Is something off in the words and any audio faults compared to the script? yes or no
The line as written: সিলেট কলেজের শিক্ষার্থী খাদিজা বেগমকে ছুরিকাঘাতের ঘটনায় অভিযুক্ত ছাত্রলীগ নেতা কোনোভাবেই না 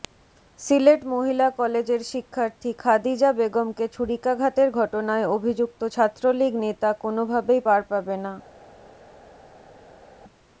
yes